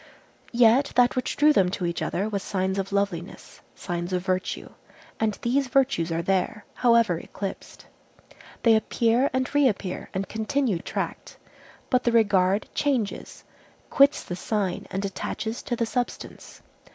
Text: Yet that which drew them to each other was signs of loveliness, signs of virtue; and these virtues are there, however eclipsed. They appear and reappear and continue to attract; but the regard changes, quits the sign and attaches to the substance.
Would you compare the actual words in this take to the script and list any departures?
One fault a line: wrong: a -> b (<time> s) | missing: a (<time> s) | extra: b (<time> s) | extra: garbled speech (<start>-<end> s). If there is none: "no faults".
missing: to (10.8 s)